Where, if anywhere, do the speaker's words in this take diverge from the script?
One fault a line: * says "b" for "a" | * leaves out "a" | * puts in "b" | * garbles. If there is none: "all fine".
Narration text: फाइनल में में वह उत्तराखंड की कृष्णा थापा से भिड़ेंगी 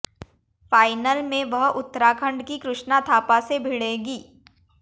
* leaves out "में"